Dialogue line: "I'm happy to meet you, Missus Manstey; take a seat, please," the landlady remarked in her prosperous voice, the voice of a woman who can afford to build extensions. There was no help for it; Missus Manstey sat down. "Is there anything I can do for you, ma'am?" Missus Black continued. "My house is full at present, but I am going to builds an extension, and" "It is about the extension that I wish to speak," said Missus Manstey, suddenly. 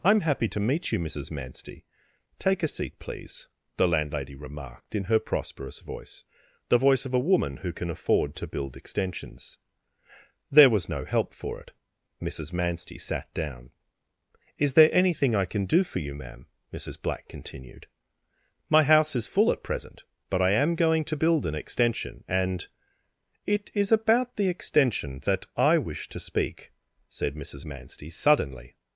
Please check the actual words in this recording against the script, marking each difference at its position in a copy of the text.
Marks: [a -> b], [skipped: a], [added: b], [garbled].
"I'm happy to meet you, Missus Manstey; take a seat, please," the landlady remarked in her prosperous voice, the voice of a woman who can afford to build extensions. There was no help for it; Missus Manstey sat down. "Is there anything I can do for you, ma'am?" Missus Black continued. "My house is full at present, but I am going to [builds -> build] an extension, and" "It is about the extension that I wish to speak," said Missus Manstey, suddenly.